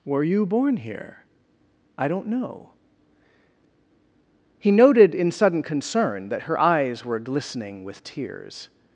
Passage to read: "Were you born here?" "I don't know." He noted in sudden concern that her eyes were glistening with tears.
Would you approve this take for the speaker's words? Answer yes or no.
yes